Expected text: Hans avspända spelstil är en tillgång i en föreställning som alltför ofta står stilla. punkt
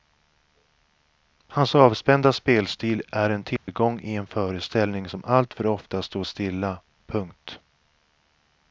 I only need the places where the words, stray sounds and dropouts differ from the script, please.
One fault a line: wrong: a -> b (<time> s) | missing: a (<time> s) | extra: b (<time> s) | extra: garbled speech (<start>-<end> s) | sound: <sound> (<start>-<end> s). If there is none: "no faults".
sound: dropout (3.6-3.7 s)